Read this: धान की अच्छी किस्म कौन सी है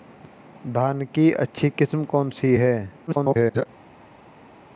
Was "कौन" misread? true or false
false